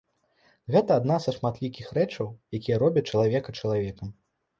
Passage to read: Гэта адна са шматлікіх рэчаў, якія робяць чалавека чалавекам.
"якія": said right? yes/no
yes